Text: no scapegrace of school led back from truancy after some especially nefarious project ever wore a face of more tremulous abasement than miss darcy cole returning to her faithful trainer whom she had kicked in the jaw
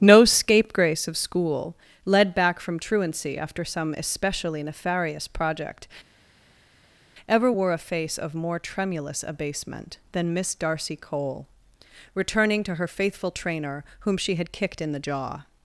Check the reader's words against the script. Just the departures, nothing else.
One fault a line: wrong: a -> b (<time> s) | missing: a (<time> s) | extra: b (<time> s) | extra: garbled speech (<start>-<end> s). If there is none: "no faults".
no faults